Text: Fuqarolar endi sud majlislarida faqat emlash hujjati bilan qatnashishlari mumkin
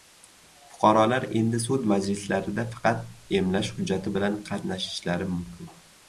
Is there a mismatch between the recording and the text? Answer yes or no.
no